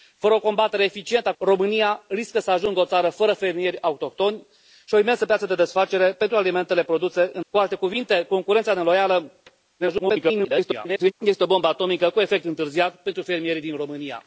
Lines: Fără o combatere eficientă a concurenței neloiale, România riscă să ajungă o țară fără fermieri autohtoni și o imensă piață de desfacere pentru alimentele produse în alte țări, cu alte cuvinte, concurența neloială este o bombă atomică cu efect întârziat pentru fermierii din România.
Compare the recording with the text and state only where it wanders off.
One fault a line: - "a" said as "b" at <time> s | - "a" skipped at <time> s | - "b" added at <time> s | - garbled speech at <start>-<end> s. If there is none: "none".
- "concurenței neloiale" skipped at 1.3 s
- "alte țări" skipped at 7.4 s
- garbled speech at 9.8-11.1 s